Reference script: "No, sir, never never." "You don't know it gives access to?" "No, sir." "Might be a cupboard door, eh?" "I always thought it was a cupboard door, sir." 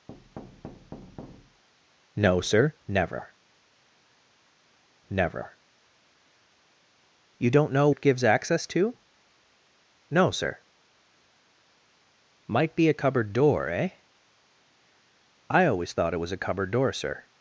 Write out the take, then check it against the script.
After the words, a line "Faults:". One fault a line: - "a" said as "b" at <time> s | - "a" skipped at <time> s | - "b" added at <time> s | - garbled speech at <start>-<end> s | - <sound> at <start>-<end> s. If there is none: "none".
"No, sir, never never." "You don't know it gives access to?" "No, sir." "Might be a cupboard door, eh?" "I always thought it was a cupboard door, sir."
Faults:
- thud at 0.1-1.6 s